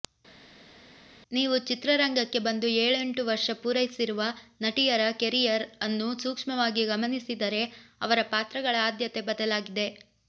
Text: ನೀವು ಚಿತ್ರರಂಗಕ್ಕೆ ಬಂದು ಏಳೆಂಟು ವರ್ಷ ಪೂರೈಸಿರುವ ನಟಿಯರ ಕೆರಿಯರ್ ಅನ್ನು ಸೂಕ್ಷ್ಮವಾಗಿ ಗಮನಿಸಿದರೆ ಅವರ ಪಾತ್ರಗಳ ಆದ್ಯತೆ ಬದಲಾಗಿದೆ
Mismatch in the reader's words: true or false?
false